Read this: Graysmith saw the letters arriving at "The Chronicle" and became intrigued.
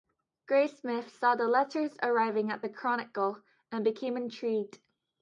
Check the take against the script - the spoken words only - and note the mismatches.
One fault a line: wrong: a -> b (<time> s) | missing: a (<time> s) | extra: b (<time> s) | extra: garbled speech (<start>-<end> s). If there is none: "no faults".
no faults